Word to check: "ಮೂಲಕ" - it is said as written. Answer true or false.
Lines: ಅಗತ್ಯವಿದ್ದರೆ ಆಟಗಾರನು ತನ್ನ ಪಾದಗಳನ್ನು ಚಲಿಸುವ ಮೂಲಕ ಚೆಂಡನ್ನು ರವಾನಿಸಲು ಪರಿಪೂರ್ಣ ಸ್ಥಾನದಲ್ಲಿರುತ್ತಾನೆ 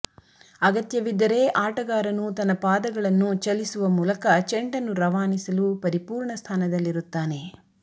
true